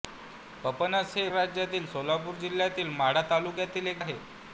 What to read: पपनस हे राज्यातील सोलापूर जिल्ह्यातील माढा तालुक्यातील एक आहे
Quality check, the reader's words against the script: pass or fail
pass